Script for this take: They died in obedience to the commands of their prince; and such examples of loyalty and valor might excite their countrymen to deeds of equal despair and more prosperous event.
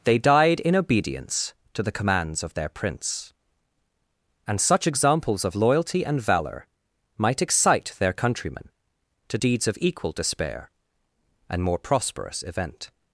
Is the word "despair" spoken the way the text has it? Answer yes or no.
yes